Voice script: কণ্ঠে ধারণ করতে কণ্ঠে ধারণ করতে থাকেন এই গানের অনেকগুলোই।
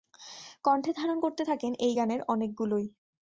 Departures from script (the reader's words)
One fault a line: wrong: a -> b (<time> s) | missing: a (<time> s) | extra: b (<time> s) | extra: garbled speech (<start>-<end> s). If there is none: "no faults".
missing: কণ্ঠে ধারণ করতে (1.4 s)